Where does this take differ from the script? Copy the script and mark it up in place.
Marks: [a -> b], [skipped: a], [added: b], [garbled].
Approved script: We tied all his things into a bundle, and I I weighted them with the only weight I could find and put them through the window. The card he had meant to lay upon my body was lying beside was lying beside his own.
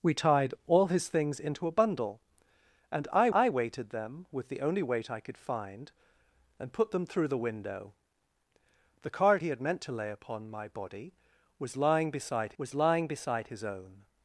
We tied all his things into a bundle, and I I weighted them with the only weight I could find and put them through the window. The card he had meant to lay upon my body was lying beside was lying beside his own.